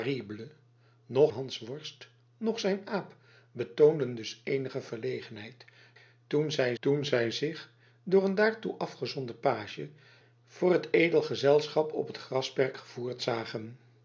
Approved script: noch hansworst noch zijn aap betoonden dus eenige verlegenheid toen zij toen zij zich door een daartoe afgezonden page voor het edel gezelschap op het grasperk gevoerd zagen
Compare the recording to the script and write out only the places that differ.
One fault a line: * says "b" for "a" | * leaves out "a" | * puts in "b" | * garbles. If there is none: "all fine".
all fine